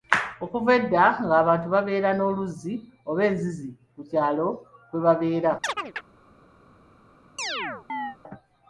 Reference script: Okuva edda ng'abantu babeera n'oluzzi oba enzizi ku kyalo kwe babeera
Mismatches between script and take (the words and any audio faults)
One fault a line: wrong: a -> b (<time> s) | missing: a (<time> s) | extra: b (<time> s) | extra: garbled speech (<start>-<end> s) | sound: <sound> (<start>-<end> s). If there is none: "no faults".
sound: chirp (5.6-6.1 s)
sound: chirp (7.4-8.2 s)